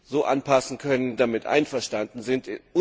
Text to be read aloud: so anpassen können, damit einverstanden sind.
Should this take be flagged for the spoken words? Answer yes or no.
no